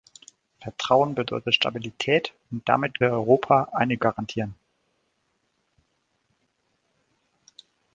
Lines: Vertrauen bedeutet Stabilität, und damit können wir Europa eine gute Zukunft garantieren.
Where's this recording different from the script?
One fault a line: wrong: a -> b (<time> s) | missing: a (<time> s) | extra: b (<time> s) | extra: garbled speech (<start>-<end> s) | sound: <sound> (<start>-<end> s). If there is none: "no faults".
missing: können (3.0 s)
missing: gute Zukunft (4.0 s)